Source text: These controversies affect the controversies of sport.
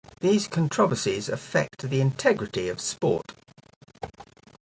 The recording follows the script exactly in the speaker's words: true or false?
false